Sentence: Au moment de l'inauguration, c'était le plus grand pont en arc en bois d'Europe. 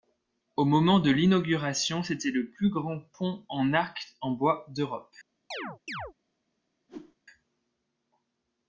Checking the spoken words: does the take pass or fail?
pass